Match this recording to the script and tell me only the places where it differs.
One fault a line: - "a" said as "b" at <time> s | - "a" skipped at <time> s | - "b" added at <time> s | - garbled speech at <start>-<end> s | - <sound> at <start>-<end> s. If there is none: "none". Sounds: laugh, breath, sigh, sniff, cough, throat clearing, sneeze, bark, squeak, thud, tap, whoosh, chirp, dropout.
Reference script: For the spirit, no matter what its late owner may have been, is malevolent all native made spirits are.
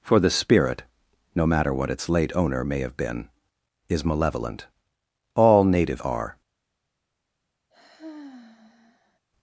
- "made spirits" skipped at 6.0 s
- sigh at 7.7-9.2 s